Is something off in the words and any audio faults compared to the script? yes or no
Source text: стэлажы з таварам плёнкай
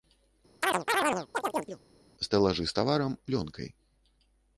yes